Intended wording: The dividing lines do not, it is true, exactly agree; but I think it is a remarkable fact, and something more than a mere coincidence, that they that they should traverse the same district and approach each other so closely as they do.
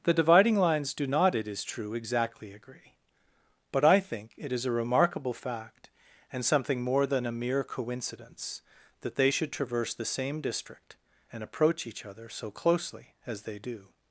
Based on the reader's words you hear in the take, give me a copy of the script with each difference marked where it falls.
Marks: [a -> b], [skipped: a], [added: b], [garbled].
The dividing lines do not, it is true, exactly agree; but I think it is a remarkable fact, and something more than a mere coincidence, that they [skipped: that they] should traverse the same district and approach each other so closely as they do.